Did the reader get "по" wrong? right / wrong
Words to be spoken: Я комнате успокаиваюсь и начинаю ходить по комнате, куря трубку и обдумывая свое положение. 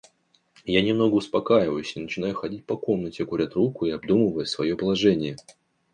right